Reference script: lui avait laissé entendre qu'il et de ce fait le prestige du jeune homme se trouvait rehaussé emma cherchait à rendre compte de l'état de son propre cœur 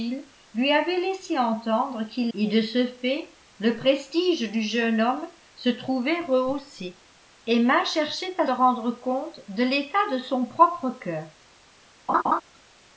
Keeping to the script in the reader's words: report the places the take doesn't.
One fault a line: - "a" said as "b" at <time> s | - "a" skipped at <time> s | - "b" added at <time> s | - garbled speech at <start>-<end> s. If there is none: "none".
none